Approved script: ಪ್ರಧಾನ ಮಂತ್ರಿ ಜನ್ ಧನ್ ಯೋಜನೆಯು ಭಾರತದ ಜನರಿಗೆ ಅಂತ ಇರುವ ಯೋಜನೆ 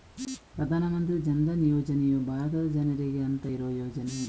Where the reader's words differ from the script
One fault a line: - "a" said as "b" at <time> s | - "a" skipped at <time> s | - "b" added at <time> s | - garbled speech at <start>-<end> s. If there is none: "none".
none